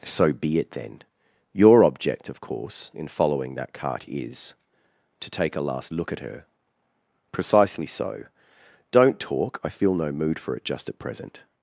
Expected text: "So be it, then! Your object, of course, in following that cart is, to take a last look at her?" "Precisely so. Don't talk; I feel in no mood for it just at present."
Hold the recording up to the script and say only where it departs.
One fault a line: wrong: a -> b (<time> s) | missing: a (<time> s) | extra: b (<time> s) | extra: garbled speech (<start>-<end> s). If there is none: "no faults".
missing: in (9.9 s)